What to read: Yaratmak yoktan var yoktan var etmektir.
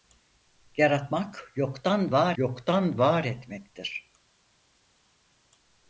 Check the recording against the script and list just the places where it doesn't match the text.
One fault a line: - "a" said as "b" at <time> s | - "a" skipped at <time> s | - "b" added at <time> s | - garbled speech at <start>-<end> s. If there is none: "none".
none